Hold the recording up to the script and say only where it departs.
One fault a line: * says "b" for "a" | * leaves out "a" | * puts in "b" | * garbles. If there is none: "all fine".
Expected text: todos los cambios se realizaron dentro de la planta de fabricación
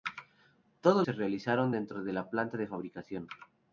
* leaves out "los cambios"